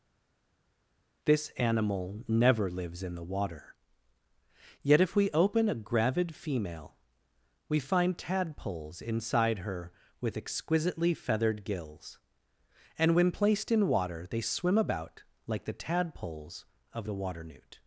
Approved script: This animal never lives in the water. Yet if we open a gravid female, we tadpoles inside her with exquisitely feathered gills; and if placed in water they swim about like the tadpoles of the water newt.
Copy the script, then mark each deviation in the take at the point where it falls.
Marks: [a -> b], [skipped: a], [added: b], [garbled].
This animal never lives in the water. Yet if we open a gravid female, we [added: find] tadpoles inside her with exquisitely feathered gills; and [if -> when] placed in water they swim about like the tadpoles of the water newt.